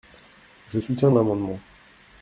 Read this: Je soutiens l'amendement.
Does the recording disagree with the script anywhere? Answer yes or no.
no